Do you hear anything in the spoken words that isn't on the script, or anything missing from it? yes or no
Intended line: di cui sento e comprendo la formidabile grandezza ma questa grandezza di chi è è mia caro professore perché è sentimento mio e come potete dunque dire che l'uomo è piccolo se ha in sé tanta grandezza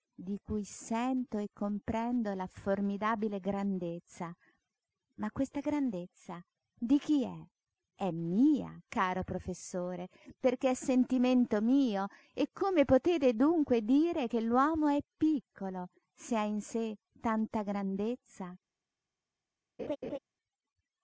no